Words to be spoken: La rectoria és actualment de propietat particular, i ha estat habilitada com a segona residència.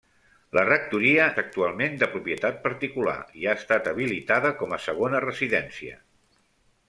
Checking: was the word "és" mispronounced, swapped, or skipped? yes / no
yes